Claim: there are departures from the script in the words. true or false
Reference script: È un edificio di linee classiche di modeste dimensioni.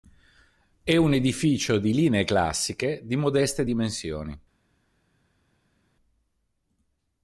false